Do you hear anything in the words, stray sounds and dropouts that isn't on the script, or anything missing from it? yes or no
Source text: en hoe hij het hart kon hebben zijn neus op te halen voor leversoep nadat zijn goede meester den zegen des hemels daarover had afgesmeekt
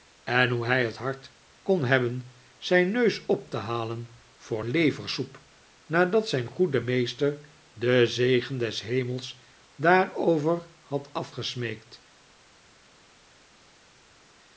no